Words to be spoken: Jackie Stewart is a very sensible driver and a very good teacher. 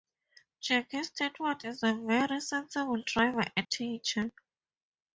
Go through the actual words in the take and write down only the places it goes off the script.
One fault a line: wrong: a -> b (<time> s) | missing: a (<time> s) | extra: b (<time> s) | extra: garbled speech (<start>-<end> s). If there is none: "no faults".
missing: a very good (3.7 s)